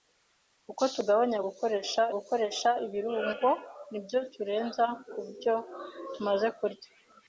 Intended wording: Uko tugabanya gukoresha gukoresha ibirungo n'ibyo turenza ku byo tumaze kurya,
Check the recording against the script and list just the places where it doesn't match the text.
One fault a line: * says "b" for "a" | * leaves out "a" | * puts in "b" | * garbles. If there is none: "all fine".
all fine